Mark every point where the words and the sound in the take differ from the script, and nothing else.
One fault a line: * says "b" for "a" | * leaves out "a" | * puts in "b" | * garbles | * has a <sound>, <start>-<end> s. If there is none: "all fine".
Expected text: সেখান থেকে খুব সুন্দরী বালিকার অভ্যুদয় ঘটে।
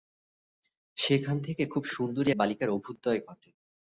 all fine